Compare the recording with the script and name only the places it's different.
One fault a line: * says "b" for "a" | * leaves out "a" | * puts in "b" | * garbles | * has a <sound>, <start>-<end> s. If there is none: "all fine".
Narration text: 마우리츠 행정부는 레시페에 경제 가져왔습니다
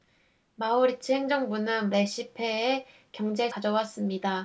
all fine